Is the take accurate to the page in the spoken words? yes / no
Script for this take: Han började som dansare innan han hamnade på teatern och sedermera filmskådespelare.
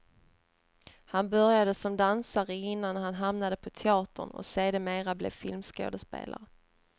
no